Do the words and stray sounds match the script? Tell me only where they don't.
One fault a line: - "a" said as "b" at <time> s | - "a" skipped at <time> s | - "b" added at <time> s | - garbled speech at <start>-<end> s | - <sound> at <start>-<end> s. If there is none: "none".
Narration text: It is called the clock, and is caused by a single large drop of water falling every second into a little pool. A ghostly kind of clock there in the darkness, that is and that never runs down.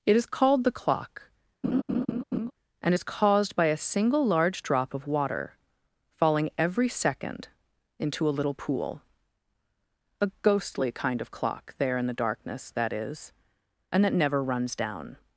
- laugh at 1.6-2.5 s